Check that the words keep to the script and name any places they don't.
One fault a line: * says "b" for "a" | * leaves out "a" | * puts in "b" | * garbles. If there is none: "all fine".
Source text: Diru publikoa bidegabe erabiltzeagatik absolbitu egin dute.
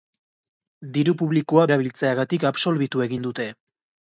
* leaves out "bidegabe"